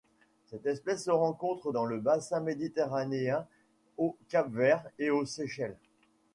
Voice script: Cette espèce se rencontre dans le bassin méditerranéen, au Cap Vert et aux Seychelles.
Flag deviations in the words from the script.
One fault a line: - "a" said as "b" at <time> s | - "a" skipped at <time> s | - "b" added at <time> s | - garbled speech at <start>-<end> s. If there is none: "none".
none